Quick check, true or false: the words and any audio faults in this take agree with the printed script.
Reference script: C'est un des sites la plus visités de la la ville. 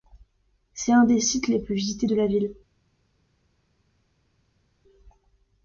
false